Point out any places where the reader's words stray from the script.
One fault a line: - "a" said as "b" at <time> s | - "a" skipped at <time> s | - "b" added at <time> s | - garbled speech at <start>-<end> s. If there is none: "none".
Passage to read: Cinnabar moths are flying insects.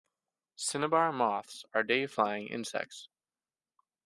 - "day" added at 1.8 s